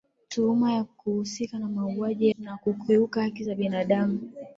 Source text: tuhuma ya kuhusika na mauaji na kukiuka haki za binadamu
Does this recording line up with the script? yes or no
yes